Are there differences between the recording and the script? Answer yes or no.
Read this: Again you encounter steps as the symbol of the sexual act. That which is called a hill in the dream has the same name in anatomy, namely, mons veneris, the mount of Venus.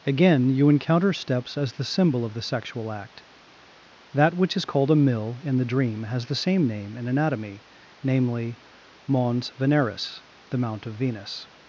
yes